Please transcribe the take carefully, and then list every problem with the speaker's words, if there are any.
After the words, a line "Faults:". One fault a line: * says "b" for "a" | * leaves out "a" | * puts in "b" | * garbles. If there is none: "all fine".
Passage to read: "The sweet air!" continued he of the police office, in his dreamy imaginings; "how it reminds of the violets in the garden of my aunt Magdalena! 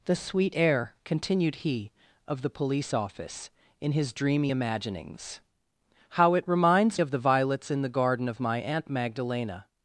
"The sweet air!" continued he of the police office, in his dreamy imaginings; "how it reminds of the violets in the garden of my aunt Magdalena!
Faults:
all fine